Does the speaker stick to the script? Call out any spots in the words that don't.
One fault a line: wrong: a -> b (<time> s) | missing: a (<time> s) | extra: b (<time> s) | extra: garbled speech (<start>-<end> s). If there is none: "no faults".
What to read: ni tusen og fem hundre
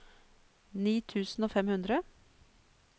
no faults